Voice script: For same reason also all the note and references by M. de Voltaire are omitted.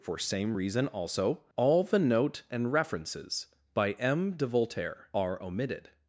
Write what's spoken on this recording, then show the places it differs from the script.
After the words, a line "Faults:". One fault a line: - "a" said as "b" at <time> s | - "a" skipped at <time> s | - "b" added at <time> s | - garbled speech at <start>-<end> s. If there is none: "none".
For same reason also all the note and references by M. de Voltaire are omitted.
Faults:
none